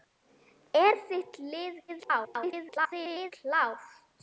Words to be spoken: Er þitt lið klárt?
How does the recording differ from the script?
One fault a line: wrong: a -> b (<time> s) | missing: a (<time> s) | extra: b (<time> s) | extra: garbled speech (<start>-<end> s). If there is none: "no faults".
extra: garbled speech (1.9-3.3 s)